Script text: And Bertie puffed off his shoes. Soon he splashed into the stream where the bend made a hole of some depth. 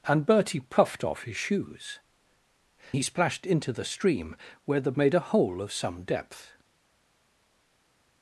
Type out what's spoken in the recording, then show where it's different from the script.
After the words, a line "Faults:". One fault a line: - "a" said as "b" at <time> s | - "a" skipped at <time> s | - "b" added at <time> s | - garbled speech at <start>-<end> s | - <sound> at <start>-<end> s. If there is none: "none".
And Bertie puffed off his shoes. He splashed into the stream where the made a hole of some depth.
Faults:
- "Soon" skipped at 2.0 s
- "bend" skipped at 4.9 s